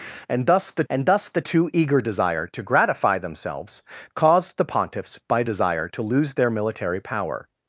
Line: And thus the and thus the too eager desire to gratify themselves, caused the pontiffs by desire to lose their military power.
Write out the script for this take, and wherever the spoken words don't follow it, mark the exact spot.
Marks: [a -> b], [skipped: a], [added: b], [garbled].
And thus the and thus the too eager desire to gratify themselves, caused the pontiffs by desire to lose their military power.